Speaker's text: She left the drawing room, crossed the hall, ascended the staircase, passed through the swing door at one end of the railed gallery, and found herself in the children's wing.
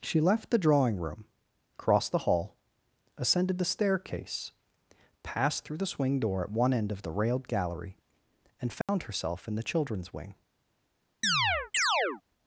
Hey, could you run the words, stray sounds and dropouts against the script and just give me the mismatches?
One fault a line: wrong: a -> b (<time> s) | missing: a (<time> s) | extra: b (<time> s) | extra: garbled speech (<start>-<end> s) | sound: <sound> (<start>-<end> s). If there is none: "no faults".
sound: dropout (8.8-8.9 s)
sound: chirp (11.2-12.2 s)